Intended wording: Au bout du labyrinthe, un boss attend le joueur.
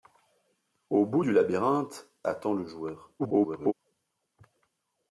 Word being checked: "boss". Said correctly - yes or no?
no